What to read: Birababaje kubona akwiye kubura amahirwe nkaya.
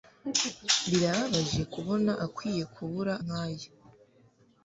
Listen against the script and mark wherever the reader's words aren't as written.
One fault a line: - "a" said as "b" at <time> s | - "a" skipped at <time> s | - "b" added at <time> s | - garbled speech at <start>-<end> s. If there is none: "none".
- "amahirwe" skipped at 3.1 s